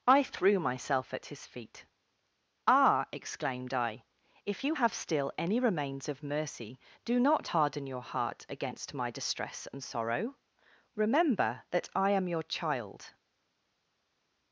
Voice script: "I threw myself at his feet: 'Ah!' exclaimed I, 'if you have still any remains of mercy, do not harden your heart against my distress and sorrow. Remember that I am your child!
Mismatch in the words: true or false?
false